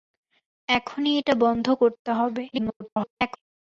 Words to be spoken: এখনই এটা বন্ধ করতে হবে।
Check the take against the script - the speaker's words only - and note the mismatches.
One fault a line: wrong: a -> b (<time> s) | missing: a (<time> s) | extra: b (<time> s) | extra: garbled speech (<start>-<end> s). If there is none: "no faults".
extra: garbled speech (2.5-3.4 s)